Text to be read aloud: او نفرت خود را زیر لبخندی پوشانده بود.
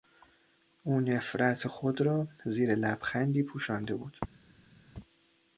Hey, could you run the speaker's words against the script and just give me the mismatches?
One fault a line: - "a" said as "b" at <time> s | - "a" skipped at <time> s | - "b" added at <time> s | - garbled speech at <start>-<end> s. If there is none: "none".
none